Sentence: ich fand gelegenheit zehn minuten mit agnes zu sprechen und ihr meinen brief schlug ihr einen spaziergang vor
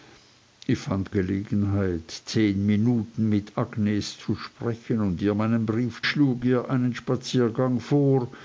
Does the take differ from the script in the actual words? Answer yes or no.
no